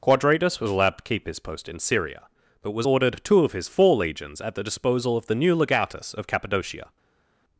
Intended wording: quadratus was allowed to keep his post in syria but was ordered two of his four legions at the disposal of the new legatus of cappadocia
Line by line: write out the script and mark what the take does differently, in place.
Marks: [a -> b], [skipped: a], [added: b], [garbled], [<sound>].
quadratus was allowed to keep his post in syria but was ordered two of his four legions at the disposal of the new legatus of cappadocia